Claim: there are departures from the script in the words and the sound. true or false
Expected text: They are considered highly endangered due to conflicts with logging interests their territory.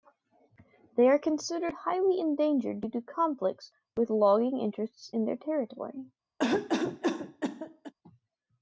true